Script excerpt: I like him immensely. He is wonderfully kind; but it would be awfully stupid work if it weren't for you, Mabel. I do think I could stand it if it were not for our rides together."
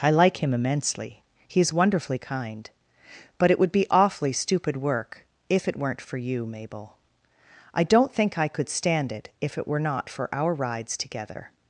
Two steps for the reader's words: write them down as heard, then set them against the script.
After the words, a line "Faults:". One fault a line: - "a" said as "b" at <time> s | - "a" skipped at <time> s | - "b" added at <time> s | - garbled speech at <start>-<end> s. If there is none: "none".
I like him immensely. He is wonderfully kind; but it would be awfully stupid work if it weren't for you, Mabel. I don't think I could stand it if it were not for our rides together."
Faults:
- "do" said as "don't" at 7.8 s